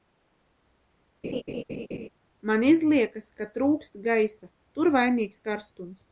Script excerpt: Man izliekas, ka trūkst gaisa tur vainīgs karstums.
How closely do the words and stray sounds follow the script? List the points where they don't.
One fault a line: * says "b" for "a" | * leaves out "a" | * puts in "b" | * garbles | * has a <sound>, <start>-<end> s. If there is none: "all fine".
* has a laugh, 1.2-2.1 s